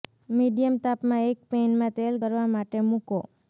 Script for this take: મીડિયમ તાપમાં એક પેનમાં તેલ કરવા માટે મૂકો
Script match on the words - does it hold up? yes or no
yes